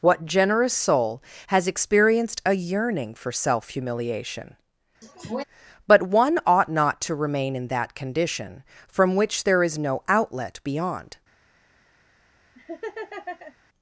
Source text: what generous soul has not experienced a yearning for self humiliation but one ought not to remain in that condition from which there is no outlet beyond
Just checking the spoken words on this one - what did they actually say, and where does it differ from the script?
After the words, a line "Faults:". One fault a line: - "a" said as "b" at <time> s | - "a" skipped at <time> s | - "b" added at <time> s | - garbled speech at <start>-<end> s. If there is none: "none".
what generous soul has experienced a yearning for self humiliation but one ought not to remain in that condition from which there is no outlet beyond
Faults:
- "not" skipped at 1.7 s